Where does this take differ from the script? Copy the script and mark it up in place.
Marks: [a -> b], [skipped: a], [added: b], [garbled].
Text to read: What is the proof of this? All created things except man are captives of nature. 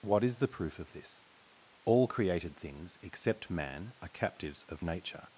What is the proof of this? All created things except man are captives of nature.